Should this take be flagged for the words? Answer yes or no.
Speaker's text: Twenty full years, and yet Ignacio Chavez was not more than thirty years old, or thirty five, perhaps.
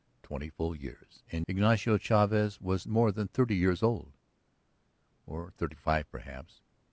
yes